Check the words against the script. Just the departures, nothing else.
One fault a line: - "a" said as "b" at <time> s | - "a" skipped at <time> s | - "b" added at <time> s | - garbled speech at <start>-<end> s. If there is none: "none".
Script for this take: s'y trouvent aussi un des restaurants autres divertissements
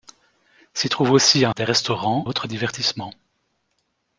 none